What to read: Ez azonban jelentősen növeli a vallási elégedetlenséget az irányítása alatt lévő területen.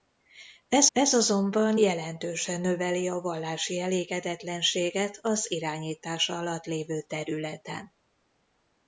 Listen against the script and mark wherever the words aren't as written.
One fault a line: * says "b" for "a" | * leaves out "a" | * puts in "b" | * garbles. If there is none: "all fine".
* puts in "ez"